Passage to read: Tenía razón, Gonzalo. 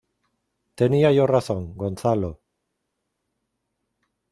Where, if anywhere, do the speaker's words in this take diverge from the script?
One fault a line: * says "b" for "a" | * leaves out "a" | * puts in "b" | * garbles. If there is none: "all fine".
* puts in "yo"